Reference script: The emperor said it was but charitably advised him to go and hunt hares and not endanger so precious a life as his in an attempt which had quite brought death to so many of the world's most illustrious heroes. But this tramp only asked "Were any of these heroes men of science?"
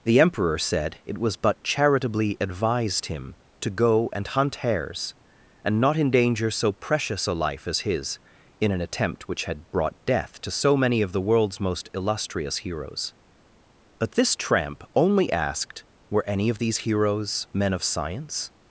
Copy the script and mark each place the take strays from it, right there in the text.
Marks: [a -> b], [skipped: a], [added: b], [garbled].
The emperor said it was but charitably advised him to go and hunt hares and not endanger so precious a life as his in an attempt which had [skipped: quite] brought death to so many of the world's most illustrious heroes. But this tramp only asked "Were any of these heroes men of science?"